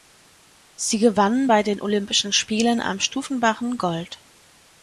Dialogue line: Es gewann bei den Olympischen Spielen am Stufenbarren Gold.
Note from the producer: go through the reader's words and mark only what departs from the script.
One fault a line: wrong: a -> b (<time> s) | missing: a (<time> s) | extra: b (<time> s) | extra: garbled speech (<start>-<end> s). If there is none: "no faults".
wrong: Es -> Sie (0.8 s)